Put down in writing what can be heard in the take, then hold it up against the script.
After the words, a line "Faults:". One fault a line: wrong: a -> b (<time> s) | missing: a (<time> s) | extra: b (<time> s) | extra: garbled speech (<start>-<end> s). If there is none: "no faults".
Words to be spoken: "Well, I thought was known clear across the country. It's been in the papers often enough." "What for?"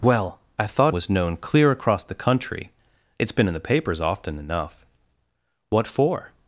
"Well, I thought was known clear across the country. It's been in the papers often enough." "What for?"
Faults:
no faults